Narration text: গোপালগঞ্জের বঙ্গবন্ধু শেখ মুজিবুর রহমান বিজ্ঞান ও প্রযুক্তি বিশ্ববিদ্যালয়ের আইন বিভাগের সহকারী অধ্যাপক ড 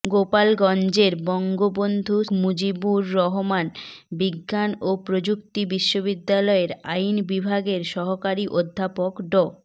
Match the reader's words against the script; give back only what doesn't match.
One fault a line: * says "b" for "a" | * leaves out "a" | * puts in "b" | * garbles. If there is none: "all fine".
* leaves out "শেখ"